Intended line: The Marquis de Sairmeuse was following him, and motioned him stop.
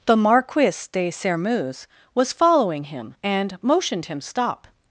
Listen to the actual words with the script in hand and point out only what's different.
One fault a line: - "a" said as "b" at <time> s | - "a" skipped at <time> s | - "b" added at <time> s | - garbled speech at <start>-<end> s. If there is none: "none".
none